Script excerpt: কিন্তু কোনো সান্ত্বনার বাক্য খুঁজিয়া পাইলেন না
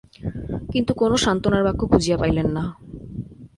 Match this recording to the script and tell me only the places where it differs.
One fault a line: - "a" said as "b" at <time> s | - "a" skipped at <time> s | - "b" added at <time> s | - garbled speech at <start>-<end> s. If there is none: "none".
none